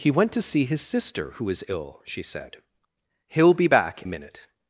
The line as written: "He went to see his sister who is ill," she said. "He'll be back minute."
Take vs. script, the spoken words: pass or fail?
pass